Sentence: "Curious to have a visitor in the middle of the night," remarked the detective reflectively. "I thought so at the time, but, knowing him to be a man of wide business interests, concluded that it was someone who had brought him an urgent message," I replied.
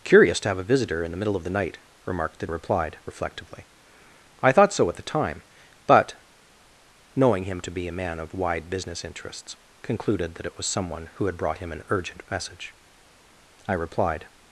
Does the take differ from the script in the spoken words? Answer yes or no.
yes